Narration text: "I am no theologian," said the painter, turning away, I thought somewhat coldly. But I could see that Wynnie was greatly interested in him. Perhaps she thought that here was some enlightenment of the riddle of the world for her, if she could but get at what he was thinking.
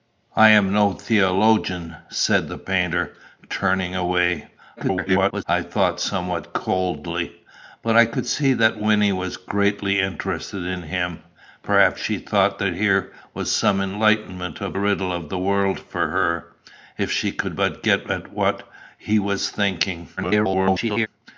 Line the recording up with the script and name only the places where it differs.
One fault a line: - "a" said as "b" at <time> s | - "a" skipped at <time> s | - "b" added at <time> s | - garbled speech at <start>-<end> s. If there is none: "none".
- garbled speech at 4.8-5.4 s
- "the" skipped at 14.8 s
- garbled speech at 20.2-21.1 s